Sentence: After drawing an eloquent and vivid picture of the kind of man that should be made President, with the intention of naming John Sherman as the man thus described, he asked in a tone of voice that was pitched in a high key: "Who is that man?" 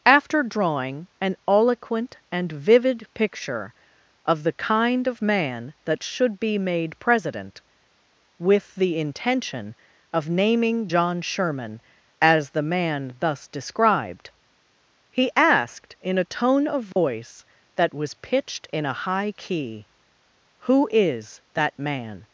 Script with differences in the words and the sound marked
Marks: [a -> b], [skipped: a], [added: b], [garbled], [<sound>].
After drawing an eloquent and vivid picture of the kind of man that should be made President, with the intention of naming John Sherman as the man thus described, he asked in a tone of voice [dropout] that was pitched in a high key: "Who is that man?"